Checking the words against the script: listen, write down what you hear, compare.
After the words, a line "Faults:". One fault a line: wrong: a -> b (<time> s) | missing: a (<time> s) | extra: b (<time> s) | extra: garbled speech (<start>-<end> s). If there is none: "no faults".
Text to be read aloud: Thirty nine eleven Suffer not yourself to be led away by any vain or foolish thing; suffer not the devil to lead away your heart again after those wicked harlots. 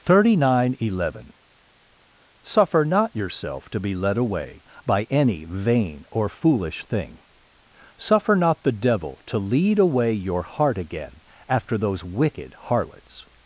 Thirty nine eleven Suffer not yourself to be led away by any vain or foolish thing; suffer not the devil to lead away your heart again after those wicked harlots.
Faults:
no faults